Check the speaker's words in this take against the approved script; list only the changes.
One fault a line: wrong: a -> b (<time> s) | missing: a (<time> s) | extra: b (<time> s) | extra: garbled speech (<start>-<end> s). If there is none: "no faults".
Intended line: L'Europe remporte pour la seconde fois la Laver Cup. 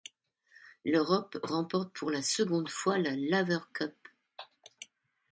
no faults